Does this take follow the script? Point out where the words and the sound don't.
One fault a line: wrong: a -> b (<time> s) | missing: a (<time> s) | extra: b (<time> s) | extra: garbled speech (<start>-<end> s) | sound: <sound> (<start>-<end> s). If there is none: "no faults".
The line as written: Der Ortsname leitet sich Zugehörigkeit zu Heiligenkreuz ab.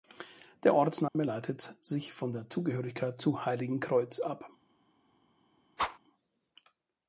sound: dropout (1.1-1.2 s)
extra: von der (2.1 s)
sound: whoosh (5.8-6.0 s)